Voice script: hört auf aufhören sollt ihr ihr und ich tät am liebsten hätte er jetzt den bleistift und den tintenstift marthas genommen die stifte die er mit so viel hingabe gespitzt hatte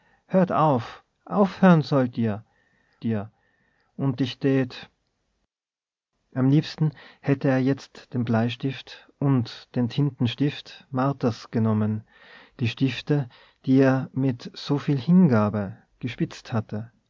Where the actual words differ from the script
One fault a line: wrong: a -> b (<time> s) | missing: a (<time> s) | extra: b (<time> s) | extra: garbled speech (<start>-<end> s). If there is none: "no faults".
no faults